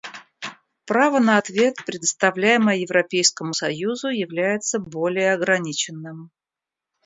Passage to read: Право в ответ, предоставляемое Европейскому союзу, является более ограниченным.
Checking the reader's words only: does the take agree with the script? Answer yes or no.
no